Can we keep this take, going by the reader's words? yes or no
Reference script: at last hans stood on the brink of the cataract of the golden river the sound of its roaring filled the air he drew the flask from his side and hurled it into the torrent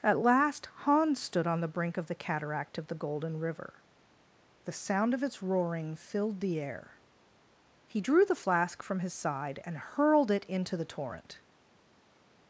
yes